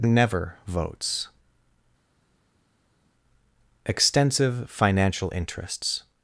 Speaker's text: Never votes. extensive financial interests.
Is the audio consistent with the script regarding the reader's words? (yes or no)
yes